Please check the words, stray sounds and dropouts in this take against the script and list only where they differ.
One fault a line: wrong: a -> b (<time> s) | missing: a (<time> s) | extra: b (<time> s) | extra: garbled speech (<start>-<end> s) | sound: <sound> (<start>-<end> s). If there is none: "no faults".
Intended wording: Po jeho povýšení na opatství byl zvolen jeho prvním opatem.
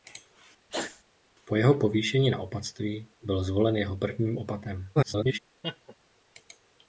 sound: sneeze (0.7-1.0 s)
extra: garbled speech (5.0-5.4 s)
sound: laugh (5.6-6.0 s)